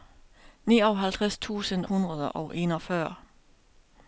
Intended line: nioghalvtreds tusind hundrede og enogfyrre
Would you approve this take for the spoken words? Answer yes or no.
yes